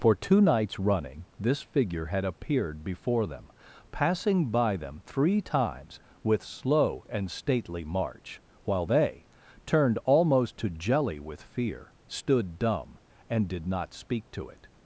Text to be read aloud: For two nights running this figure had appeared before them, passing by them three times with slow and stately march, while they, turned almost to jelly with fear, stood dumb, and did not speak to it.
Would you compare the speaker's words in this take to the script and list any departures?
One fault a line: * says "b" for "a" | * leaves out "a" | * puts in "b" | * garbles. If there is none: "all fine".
all fine